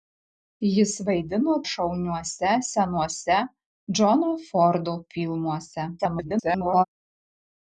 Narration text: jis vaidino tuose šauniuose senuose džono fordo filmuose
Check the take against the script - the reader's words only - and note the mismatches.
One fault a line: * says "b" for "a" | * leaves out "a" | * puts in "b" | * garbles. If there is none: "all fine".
* leaves out "tuose"
* garbles